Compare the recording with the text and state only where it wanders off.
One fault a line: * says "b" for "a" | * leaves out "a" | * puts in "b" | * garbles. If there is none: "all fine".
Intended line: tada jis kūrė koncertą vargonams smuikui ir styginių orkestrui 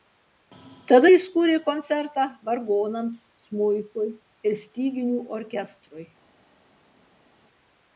all fine